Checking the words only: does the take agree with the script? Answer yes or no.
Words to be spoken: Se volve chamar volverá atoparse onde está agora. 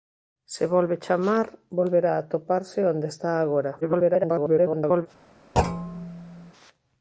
no